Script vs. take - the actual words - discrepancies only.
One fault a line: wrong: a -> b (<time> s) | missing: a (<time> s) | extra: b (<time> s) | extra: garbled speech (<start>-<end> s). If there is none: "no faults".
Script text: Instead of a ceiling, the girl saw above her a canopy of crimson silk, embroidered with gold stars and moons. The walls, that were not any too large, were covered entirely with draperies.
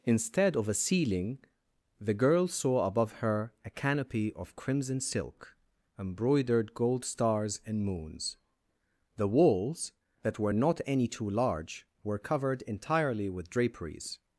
missing: with (6.7 s)